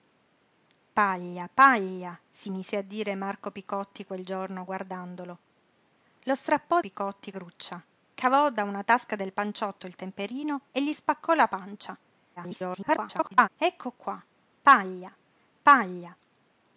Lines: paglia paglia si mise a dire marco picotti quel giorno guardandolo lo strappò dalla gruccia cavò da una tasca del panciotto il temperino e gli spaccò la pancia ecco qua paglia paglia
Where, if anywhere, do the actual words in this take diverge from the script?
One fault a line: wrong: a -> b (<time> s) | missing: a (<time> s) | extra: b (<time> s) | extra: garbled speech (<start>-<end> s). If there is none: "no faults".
wrong: dalla -> picotti (6.8 s)
extra: garbled speech (12.4-13.5 s)